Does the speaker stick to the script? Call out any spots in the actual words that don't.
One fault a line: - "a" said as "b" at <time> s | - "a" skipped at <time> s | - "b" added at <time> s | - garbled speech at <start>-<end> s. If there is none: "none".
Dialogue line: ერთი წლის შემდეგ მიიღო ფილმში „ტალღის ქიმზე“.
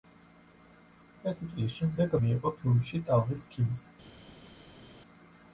none